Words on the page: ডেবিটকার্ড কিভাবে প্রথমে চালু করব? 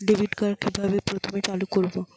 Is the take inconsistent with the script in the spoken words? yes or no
no